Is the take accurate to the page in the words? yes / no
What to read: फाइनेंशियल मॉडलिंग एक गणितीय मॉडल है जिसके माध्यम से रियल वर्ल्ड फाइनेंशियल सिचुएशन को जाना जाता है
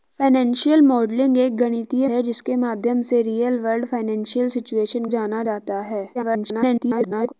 no